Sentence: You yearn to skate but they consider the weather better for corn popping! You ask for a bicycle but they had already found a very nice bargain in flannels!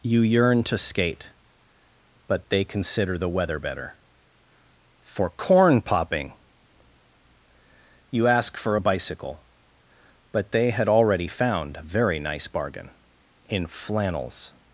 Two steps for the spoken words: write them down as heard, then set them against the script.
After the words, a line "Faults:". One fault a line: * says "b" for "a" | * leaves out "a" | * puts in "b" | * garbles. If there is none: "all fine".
You yearn to skate but they consider the weather better for corn popping! You ask for a bicycle but they had already found a very nice bargain in flannels!
Faults:
all fine